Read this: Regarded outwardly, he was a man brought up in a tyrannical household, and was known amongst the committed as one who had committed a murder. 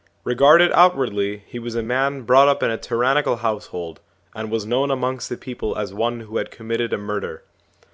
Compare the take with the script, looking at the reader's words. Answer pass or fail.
fail